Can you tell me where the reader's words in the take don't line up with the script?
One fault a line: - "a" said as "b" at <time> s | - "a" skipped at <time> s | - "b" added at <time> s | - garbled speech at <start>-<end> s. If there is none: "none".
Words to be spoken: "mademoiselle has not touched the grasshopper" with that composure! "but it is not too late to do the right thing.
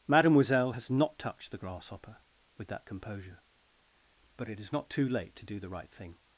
none